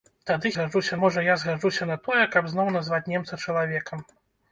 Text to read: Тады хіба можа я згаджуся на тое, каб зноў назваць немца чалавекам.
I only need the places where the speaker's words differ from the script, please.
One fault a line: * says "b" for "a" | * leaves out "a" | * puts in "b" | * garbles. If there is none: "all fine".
* says "згаджуся" for "хіба"